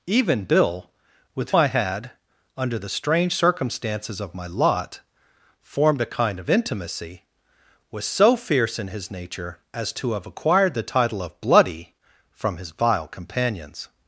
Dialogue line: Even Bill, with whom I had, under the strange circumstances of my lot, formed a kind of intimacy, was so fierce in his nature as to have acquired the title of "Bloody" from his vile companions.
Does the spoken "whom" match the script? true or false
false